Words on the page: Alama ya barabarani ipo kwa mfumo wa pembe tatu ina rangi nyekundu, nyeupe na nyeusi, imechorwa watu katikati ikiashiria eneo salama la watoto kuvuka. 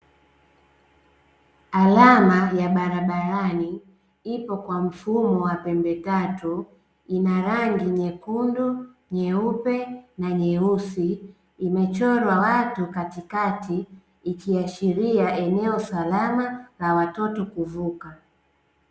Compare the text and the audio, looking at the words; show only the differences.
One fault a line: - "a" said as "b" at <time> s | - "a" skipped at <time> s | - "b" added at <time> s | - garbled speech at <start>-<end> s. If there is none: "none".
none